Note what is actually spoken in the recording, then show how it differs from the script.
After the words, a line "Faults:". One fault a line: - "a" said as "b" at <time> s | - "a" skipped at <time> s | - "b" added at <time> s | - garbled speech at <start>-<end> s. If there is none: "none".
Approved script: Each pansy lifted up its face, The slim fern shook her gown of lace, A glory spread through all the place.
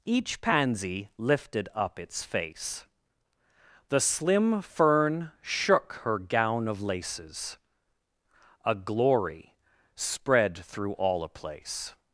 Each pansy lifted up its face, The slim fern shook her gown of laces, A glory spread through all a place.
Faults:
- "lace" said as "laces" at 6.8 s
- "the" said as "a" at 11.2 s